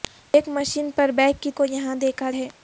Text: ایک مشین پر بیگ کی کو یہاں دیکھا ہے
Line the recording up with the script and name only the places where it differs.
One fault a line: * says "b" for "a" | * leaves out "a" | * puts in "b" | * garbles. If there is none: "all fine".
all fine